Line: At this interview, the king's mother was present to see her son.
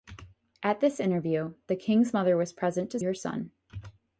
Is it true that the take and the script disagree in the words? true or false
true